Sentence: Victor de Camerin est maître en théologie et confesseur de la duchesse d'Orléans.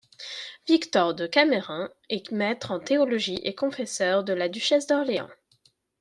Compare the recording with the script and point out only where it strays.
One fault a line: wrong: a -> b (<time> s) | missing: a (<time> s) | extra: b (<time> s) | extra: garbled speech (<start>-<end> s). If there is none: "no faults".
no faults